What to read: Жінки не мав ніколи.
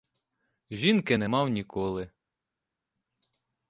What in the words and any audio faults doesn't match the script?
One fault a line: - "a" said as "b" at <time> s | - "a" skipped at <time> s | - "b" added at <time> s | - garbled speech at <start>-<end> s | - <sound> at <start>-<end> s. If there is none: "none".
none